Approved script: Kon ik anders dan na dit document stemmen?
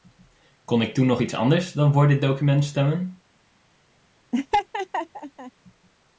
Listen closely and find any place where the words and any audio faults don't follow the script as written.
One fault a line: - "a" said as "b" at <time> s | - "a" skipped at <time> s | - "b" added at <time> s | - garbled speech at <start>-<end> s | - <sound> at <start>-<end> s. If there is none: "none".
- "toen nog iets" added at 0.9 s
- "na" said as "voor" at 1.9 s
- laugh at 4.3-5.5 s